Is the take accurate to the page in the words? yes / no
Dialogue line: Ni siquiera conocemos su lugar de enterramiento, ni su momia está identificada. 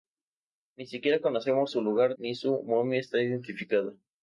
no